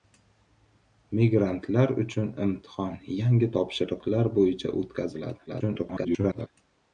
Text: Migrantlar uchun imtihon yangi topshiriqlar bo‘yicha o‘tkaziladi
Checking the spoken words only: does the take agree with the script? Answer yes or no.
no